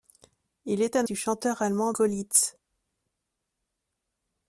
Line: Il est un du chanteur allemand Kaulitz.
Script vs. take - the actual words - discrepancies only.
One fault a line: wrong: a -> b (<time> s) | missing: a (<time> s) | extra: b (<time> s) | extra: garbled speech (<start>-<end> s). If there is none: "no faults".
no faults